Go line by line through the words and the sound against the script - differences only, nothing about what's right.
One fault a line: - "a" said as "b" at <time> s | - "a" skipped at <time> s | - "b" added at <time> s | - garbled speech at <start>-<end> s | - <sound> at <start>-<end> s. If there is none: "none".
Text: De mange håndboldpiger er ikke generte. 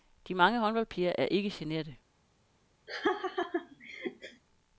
- laugh at 2.9-4.4 s